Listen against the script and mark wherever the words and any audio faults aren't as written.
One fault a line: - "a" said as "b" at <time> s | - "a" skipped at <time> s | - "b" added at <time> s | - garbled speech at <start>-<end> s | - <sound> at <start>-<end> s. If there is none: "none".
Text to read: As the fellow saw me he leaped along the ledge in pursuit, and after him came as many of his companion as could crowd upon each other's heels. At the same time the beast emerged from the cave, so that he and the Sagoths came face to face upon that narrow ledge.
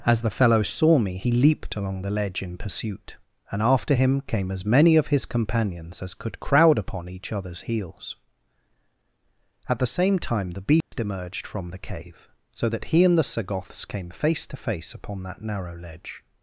- "companion" said as "companions" at 5.3 s
- dropout at 10.8-10.9 s